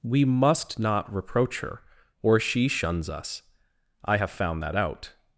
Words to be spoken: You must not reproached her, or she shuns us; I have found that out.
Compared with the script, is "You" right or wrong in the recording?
wrong